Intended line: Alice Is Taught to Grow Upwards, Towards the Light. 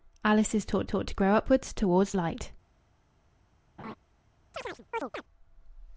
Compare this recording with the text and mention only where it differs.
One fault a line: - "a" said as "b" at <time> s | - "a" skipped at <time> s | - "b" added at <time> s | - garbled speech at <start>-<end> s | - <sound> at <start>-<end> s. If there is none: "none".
- "Taught" added at 0.9 s
- "the" skipped at 2.1 s
- laugh at 3.8-4.0 s
- chirp at 4.5-5.2 s